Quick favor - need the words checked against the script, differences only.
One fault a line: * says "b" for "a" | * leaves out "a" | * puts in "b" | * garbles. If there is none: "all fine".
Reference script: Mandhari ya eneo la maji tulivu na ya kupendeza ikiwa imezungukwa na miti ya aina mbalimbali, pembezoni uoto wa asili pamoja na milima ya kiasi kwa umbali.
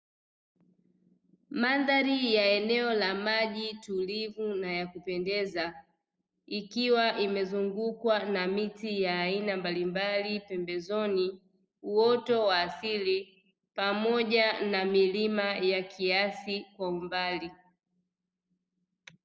all fine